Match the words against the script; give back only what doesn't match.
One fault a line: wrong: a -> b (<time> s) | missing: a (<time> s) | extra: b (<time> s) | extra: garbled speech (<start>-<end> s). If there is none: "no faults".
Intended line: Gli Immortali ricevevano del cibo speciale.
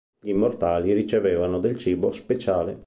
no faults